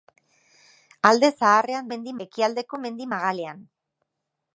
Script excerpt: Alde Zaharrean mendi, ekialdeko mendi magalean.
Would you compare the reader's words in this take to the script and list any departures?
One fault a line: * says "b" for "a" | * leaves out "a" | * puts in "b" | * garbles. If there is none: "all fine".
all fine